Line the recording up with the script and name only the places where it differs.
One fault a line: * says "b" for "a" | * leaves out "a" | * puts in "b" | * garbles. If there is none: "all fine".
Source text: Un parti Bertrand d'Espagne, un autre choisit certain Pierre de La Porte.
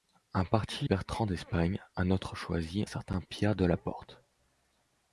all fine